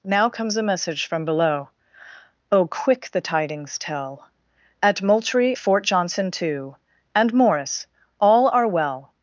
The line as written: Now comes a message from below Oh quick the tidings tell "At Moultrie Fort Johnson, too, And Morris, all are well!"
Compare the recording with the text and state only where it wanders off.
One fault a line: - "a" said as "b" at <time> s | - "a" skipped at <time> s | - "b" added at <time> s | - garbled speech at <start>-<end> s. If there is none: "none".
none